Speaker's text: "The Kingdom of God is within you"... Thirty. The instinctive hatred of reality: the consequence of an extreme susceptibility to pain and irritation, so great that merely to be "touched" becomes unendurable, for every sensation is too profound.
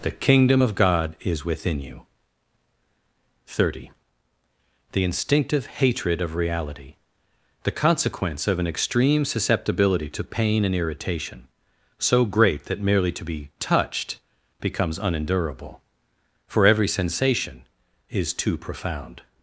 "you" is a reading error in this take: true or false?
false